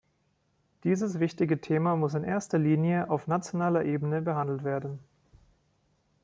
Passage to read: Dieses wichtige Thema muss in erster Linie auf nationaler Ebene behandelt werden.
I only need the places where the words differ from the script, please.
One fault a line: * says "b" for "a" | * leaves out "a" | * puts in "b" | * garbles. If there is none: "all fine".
all fine